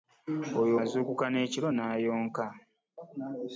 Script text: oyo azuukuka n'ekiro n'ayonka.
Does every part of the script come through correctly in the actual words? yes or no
yes